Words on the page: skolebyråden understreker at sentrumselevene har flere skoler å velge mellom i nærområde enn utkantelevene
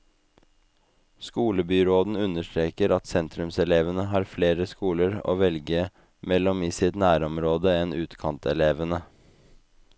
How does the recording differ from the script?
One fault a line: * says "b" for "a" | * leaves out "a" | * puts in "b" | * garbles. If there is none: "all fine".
* puts in "sitt"